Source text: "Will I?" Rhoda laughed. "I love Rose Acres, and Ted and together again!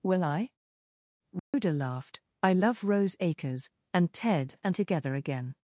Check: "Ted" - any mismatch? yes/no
no